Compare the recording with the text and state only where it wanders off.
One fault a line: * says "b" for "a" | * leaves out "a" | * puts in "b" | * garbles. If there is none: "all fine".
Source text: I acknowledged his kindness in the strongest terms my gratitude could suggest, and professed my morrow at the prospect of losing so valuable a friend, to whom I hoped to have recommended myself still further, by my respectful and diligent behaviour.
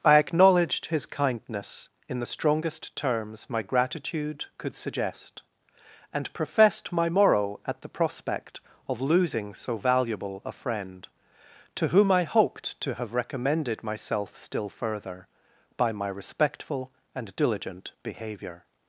all fine